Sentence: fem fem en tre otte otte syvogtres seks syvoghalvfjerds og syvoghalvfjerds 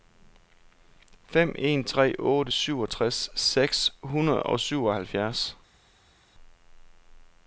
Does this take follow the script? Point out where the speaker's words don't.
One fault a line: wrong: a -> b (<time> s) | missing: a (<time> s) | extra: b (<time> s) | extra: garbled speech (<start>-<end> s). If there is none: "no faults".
missing: fem (1.6 s)
missing: otte (2.5 s)
wrong: syvoghalvfjerds -> hundrede (4.0 s)